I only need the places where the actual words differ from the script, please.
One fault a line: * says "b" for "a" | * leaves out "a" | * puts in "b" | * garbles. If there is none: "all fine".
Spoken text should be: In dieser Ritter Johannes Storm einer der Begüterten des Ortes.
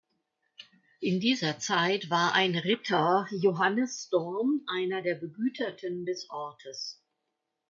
* puts in "Zeit war ein"